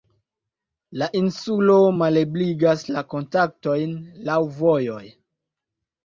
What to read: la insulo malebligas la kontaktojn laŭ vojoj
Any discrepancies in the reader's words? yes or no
no